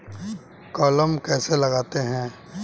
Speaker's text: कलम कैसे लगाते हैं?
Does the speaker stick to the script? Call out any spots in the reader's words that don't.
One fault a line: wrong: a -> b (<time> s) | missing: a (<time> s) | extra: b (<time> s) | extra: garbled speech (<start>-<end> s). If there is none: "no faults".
no faults